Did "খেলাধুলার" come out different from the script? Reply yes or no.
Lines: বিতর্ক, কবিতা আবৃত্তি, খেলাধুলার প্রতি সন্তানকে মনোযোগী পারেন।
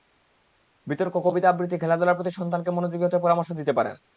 no